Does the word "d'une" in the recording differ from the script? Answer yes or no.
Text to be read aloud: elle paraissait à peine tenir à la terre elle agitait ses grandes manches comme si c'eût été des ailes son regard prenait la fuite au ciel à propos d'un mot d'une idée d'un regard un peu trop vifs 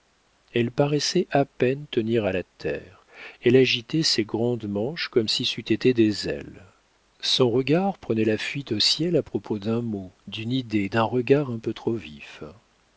no